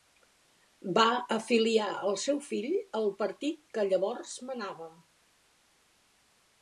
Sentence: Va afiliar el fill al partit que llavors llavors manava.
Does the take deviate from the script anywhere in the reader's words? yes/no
yes